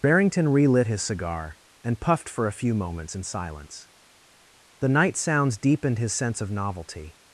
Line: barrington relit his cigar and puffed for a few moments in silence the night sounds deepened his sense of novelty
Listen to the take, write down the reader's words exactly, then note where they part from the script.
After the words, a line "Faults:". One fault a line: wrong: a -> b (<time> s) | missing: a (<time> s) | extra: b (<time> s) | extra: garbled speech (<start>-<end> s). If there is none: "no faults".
barrington relit his cigar and puffed for a few moments in silence the night sounds deepened his sense of novelty
Faults:
no faults